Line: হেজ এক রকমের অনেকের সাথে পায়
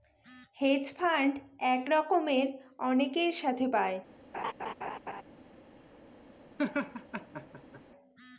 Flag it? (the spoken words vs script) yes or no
yes